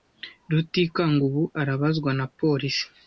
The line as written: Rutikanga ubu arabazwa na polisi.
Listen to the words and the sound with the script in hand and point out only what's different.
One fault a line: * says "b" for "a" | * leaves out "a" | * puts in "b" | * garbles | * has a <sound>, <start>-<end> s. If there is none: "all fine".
all fine